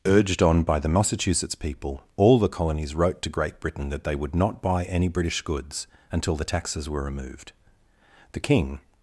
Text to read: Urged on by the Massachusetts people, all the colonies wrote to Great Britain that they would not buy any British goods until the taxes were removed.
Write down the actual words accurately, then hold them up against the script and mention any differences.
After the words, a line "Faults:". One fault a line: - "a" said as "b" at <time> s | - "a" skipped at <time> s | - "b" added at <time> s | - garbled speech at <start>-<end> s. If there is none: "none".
Urged on by the Massachusetts people, all the colonies wrote to Great Britain that they would not buy any British goods until the taxes were removed. The king
Faults:
- "The king" added at 8.3 s